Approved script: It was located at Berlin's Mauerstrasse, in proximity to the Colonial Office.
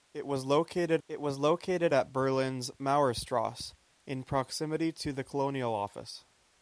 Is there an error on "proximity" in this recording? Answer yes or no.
no